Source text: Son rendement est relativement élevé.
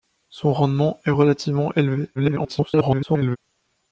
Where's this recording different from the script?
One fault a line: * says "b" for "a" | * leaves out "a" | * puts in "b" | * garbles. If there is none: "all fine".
* garbles